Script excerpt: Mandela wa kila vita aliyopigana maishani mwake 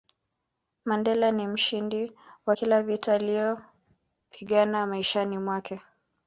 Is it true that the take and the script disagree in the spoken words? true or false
true